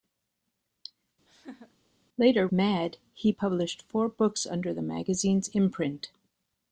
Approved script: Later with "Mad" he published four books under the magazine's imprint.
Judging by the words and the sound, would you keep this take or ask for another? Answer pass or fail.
fail